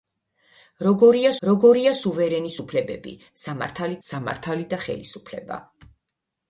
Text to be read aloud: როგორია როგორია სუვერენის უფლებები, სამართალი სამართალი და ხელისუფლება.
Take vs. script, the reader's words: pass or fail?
pass